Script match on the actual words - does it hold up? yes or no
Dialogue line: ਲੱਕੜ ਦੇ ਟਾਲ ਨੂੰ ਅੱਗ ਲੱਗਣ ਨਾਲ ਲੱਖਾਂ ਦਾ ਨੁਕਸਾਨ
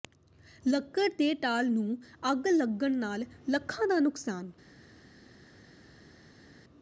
yes